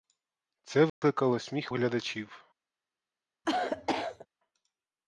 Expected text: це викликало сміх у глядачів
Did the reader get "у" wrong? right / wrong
wrong